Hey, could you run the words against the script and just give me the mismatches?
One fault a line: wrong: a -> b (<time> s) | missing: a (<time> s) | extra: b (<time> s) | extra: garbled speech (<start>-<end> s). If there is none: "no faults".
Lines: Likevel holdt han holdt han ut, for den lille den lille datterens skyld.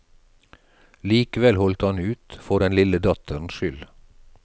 missing: holdt han (2.0 s)
missing: den lille (3.0 s)